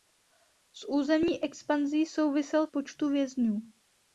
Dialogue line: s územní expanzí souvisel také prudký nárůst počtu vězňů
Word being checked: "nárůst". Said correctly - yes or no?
no